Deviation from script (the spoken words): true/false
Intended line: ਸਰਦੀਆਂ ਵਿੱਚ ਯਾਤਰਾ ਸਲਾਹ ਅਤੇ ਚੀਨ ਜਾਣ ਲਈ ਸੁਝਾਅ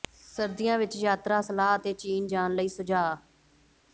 false